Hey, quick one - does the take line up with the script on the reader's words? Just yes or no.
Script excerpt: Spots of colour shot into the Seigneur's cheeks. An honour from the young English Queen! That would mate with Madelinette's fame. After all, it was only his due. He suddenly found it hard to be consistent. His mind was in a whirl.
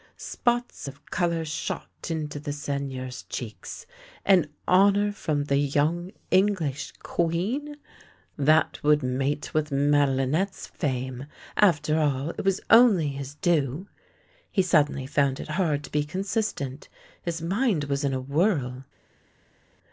yes